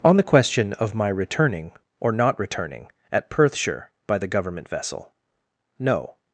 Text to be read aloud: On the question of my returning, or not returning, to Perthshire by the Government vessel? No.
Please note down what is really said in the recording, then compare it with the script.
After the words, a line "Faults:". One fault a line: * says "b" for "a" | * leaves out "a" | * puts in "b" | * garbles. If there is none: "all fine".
On the question of my returning, or not returning, at Perthshire by the Government vessel? No.
Faults:
* says "at" for "to"